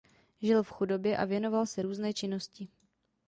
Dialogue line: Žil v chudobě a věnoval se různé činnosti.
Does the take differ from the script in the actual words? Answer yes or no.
no